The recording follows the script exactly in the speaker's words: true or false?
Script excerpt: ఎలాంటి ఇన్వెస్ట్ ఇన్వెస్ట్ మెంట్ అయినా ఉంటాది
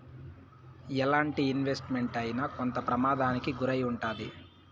false